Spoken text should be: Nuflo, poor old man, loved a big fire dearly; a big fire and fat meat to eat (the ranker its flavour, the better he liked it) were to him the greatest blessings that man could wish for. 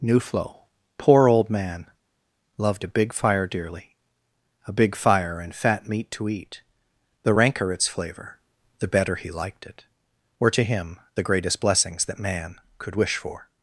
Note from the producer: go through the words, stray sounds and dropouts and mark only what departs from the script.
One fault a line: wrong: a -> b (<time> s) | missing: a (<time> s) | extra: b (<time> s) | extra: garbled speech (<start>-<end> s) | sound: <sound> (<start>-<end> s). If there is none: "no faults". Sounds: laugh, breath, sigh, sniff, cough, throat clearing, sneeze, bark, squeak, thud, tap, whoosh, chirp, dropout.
no faults